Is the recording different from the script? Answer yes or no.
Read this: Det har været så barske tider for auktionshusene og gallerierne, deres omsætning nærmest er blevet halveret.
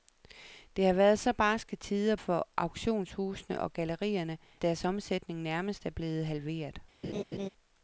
no